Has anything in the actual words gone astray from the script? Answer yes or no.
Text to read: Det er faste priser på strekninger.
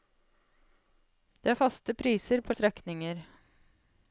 no